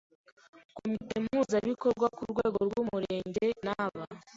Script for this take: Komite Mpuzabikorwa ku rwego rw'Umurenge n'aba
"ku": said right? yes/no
yes